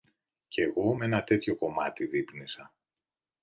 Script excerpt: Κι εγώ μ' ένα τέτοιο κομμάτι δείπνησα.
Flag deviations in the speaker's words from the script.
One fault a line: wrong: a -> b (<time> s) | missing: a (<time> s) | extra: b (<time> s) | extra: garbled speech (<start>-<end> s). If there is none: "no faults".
no faults